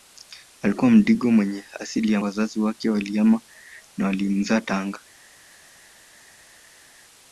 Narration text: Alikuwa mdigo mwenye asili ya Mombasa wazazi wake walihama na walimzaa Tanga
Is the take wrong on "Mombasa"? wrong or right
wrong